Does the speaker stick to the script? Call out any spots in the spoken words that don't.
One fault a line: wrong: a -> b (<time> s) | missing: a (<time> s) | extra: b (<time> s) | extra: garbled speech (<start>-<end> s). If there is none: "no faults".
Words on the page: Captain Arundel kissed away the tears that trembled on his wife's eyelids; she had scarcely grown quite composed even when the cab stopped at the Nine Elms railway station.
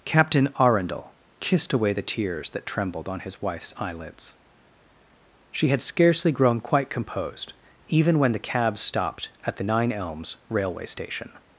no faults